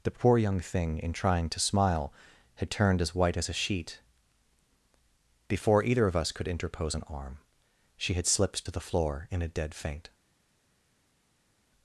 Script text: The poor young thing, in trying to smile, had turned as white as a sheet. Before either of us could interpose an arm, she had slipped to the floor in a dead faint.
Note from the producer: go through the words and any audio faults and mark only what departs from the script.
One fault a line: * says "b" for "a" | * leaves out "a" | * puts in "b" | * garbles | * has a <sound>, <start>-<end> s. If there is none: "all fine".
all fine